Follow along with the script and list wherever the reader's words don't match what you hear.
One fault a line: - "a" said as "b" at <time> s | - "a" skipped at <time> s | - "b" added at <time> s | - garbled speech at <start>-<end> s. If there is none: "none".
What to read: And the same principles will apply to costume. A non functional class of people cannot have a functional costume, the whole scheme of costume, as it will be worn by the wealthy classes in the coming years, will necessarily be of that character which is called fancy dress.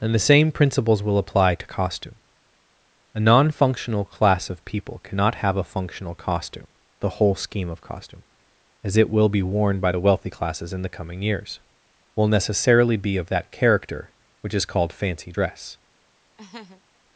none